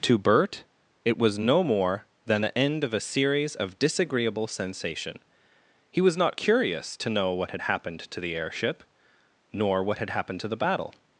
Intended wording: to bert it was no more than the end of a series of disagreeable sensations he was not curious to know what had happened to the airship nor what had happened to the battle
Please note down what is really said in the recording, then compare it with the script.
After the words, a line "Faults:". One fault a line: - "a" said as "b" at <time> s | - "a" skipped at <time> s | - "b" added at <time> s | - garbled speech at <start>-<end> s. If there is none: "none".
to bert it was no more than the end of a series of disagreeable sensation he was not curious to know what had happened to the airship nor what had happened to the battle
Faults:
- "sensations" said as "sensation" at 4.5 s